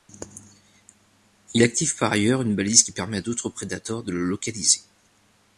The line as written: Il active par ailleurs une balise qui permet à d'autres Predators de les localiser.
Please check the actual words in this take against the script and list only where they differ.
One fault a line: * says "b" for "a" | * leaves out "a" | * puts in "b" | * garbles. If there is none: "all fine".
* says "le" for "les"